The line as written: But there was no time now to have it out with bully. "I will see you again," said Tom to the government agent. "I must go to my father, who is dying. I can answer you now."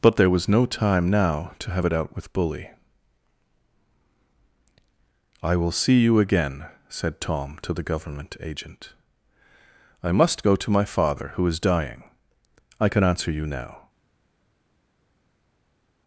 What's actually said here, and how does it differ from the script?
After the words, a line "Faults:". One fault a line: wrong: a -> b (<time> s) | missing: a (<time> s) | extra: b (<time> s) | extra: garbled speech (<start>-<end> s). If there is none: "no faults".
But there was no time now to have it out with bully. "I will see you again," said Tom to the government agent. "I must go to my father, who is dying. I can answer you now."
Faults:
no faults